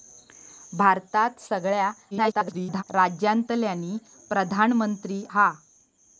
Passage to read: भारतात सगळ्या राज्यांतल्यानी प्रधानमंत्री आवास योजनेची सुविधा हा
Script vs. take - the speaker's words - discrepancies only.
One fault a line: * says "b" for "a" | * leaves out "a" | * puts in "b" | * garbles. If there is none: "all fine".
* garbles
* leaves out "आवास योजनेची सुविधा"